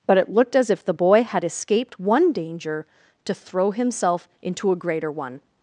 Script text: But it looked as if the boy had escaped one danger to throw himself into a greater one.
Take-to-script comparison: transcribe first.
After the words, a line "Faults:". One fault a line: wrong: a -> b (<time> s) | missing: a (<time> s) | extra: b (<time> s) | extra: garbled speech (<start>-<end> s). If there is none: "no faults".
But it looked as if the boy had escaped one danger to throw himself into a greater one.
Faults:
no faults